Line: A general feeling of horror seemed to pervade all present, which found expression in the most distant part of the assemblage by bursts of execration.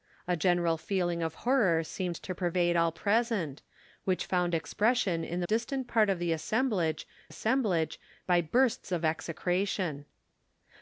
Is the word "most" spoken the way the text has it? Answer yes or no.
no